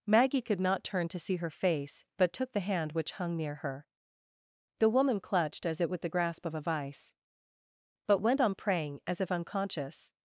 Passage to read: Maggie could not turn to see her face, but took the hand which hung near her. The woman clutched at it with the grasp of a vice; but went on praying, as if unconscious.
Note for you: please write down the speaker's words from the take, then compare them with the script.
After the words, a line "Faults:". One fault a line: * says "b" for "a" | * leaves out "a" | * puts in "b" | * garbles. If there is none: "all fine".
Maggie could not turn to see her face, but took the hand which hung near her. The woman clutched as it with the grasp of a vice; but went on praying, as if unconscious.
Faults:
* says "as" for "at"